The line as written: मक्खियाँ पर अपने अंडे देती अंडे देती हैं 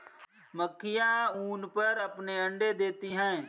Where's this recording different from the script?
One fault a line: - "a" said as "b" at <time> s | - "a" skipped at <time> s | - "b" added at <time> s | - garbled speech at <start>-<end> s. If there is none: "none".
- "ऊन" added at 1.4 s
- "अंडे देती" skipped at 3.1 s